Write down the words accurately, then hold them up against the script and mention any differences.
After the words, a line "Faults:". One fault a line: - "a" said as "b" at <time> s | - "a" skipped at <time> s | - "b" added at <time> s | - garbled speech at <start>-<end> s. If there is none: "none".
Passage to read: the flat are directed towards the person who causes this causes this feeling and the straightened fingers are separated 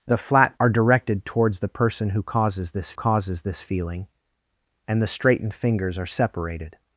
the flat are directed towards the person who causes this causes this feeling and the straightened fingers are separated
Faults:
none